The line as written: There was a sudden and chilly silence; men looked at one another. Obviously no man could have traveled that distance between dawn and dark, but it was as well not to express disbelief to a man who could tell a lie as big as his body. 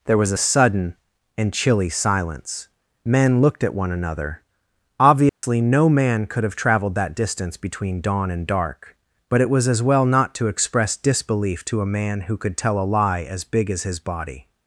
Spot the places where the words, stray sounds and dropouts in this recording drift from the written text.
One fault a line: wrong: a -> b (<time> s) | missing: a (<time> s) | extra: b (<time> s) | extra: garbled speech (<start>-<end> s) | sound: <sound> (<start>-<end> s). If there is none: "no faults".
sound: dropout (5.3-5.4 s)